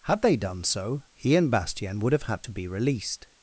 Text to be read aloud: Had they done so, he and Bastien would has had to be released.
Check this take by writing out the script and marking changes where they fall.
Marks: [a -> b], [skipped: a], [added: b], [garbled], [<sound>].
Had they done so, he and Bastien would [has -> have] had to be released.